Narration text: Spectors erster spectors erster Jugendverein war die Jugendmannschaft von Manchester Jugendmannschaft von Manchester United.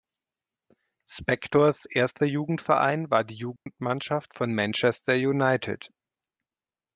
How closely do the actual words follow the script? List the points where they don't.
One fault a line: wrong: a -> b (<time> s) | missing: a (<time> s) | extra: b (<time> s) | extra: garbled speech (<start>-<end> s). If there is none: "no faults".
missing: spectors erster (2.3 s)
missing: Jugendmannschaft von Manchester (5.1 s)